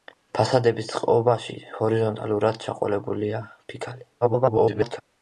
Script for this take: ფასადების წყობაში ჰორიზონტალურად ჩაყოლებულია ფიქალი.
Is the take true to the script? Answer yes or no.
no